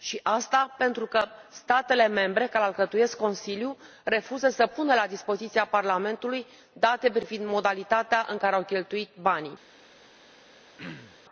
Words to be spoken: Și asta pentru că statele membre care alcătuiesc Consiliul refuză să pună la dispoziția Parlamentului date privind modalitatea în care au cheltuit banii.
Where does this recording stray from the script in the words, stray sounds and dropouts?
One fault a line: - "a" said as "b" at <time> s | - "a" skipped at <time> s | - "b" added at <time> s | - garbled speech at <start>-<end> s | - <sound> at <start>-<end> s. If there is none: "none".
- throat clearing at 10.8-11.2 s